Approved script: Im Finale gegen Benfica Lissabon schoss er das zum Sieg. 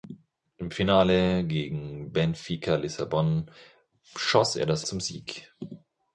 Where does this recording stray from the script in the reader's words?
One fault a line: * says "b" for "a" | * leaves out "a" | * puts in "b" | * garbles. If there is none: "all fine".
all fine